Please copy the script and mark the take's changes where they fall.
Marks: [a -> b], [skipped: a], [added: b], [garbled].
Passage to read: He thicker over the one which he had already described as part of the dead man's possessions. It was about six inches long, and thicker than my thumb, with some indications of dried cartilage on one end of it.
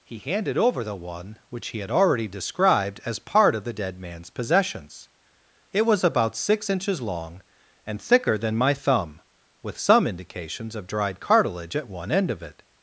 He [thicker -> handed] over the one which he had already described as part of the dead man's possessions. It was about six inches long, and thicker than my thumb, with some indications of dried cartilage [on -> at] one end of it.